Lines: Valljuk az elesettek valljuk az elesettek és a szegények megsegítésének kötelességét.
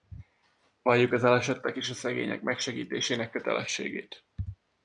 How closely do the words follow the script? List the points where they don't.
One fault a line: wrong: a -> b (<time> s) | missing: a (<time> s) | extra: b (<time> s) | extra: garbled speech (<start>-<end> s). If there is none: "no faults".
missing: valljuk az elesettek (1.8 s)